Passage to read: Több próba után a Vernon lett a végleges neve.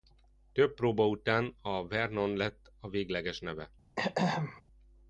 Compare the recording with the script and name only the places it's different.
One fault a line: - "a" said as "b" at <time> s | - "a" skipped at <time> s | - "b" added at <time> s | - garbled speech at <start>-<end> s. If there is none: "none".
none